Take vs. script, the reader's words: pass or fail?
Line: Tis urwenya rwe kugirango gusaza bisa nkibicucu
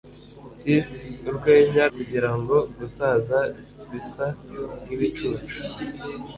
fail